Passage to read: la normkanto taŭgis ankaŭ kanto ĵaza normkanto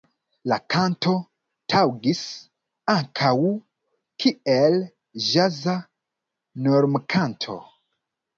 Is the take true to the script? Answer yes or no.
no